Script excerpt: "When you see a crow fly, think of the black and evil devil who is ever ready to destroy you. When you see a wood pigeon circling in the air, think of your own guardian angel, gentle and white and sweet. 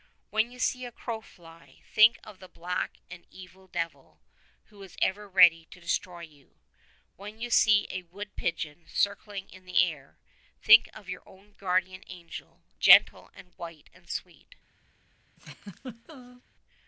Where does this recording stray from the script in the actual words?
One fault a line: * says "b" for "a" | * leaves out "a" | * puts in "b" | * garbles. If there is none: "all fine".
all fine